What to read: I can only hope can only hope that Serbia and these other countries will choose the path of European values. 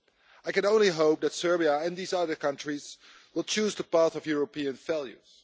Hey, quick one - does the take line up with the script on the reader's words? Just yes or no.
no